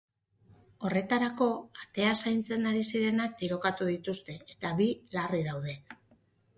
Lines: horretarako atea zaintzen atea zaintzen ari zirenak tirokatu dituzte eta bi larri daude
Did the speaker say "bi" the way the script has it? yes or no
yes